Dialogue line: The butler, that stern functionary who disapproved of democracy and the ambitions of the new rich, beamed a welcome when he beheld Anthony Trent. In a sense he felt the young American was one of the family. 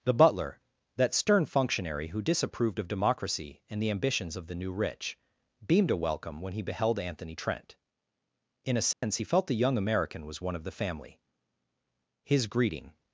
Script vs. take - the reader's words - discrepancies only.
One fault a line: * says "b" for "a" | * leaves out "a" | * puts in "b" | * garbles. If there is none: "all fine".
* puts in "His greeting"